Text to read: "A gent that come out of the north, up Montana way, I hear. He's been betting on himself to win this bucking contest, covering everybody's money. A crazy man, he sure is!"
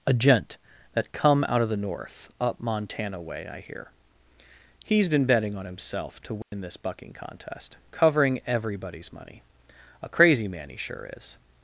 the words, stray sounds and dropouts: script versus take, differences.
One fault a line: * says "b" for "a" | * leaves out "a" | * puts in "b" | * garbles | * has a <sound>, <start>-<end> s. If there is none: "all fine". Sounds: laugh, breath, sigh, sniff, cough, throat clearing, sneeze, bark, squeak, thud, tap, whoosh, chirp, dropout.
* has a dropout, 6.4-6.5 s